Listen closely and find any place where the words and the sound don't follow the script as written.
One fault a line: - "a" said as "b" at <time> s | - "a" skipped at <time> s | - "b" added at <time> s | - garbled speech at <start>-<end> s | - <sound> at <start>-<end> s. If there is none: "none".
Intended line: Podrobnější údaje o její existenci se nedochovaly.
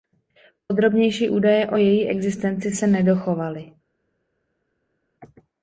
none